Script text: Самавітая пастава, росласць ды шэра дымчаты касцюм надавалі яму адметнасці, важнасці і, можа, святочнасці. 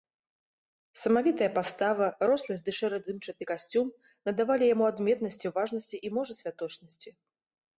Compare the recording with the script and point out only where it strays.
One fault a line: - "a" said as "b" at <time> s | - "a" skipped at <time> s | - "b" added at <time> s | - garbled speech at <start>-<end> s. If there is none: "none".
none